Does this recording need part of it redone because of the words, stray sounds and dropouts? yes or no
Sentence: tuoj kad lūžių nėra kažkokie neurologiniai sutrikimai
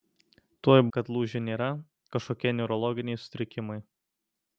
no